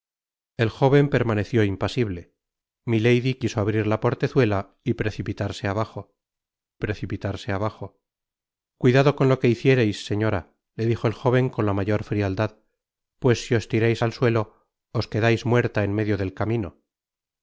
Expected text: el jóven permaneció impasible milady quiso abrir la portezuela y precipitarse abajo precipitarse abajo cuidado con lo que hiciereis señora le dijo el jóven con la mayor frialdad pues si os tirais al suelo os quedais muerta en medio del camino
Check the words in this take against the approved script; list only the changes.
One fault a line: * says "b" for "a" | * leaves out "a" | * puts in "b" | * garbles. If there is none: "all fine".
all fine